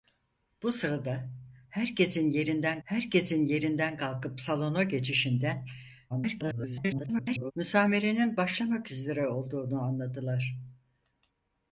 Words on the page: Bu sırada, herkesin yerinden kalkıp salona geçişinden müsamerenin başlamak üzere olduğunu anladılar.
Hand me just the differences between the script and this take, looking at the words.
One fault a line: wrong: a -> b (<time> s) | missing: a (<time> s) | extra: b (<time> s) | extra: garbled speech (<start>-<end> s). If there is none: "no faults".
extra: herkesin yerinden (2.8 s)
extra: garbled speech (6.1-7.5 s)